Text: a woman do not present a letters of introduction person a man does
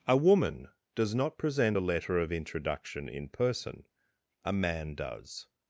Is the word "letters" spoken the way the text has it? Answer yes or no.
no